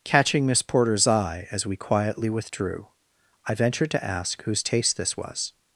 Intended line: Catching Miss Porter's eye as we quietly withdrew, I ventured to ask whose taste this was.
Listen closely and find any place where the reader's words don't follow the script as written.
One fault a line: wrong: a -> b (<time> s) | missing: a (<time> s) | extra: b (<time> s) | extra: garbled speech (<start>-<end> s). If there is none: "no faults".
no faults